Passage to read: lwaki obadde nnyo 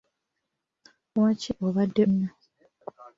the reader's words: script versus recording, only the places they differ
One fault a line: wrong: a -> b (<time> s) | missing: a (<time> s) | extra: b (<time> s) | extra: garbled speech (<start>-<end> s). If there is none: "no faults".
no faults